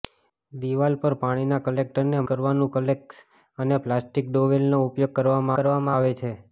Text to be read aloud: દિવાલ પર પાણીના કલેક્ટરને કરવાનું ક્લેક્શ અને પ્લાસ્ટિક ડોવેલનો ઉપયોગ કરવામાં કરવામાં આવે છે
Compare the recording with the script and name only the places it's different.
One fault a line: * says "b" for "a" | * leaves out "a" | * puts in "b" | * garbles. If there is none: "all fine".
all fine